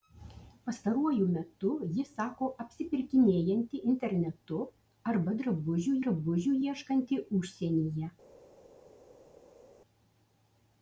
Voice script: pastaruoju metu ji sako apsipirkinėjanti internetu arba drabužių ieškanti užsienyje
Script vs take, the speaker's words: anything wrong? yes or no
yes